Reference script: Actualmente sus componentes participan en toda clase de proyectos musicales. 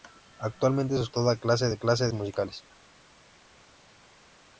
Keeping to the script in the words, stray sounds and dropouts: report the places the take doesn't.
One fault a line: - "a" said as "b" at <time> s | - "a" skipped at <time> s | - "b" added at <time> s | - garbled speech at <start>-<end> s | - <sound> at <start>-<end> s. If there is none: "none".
- "componentes participan en" skipped at 1.1 s
- "proyectos" said as "clase" at 1.8 s